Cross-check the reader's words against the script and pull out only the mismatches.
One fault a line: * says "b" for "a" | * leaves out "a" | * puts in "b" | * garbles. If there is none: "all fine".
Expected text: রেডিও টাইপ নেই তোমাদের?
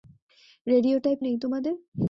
all fine